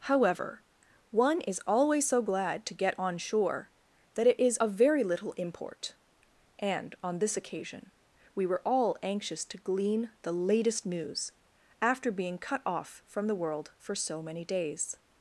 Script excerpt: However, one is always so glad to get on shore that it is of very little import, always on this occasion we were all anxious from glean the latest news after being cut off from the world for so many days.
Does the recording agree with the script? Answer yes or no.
no